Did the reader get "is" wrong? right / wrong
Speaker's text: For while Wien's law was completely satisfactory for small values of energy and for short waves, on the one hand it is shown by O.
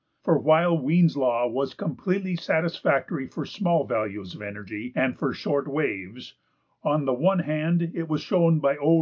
wrong